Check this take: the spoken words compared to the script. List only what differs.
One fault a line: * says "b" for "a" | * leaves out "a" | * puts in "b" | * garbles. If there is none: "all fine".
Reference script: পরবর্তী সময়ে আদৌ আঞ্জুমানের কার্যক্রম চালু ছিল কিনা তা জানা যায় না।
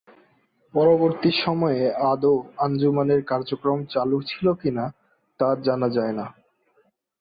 all fine